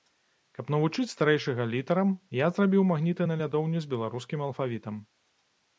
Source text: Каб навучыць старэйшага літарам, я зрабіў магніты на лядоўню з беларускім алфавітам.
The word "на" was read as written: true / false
true